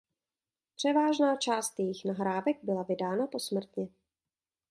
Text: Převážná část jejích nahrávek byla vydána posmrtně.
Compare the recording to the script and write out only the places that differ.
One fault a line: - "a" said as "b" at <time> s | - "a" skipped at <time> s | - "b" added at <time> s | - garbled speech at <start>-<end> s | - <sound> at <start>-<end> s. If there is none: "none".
none